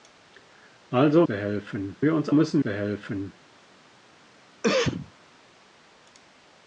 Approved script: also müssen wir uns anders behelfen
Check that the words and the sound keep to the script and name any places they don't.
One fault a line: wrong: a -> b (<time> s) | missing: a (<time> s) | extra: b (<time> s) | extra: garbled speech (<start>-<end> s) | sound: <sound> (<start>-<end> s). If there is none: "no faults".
wrong: müssen -> behelfen (1.3 s)
wrong: anders -> müssen (2.3 s)
sound: cough (4.6-5.1 s)